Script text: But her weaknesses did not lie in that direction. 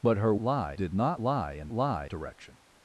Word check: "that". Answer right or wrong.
wrong